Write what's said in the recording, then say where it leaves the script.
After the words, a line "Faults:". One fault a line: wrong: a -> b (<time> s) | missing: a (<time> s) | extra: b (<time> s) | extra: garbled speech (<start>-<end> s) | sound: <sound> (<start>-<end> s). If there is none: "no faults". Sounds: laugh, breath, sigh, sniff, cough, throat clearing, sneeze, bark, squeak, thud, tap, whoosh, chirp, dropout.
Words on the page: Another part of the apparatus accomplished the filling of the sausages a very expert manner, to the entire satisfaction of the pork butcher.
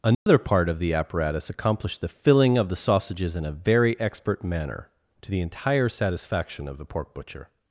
Another part of the apparatus accomplished the filling of the sausages in a very expert manner, to the entire satisfaction of the pork butcher.
Faults:
sound: dropout (0.1-0.3 s)
extra: in (3.4 s)